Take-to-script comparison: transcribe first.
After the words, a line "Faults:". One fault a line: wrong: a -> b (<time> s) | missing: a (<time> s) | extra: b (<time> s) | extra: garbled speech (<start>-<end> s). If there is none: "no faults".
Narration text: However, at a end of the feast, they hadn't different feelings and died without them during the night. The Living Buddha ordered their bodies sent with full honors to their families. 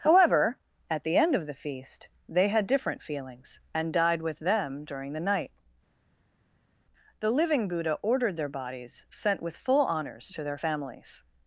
However, at the end of the feast, they had different feelings and died with them during the night. The Living Buddha ordered their bodies sent with full honors to their families.
Faults:
wrong: a -> the (1.0 s)
wrong: hadn't -> had (2.5 s)
wrong: without -> with (4.2 s)